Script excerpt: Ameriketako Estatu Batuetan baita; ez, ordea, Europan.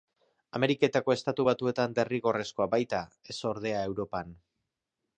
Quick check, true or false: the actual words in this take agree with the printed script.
false